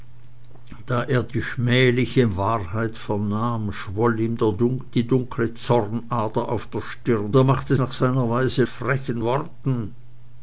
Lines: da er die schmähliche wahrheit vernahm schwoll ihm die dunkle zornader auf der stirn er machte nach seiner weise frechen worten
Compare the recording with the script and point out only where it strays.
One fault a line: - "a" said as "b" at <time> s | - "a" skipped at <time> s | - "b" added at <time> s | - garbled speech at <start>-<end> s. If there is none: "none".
none